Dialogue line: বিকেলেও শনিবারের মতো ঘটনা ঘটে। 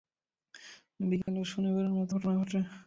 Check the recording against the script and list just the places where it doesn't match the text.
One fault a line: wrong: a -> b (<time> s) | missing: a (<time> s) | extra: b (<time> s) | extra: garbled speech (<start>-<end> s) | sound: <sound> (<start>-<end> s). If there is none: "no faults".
sound: dropout (1.2-1.3 s)